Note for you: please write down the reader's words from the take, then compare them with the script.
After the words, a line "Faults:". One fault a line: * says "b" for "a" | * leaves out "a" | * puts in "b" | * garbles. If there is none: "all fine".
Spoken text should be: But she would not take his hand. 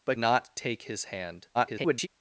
But not take his hand. [garbled]
Faults:
* leaves out "she would"
* garbles